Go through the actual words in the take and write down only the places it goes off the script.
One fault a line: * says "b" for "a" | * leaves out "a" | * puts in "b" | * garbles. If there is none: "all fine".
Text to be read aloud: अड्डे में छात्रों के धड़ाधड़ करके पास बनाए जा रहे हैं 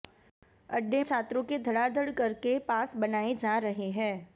* leaves out "में"